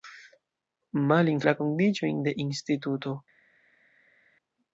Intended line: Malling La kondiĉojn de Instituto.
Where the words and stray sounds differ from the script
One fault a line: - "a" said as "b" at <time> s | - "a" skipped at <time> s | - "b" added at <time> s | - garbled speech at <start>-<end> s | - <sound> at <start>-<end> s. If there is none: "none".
none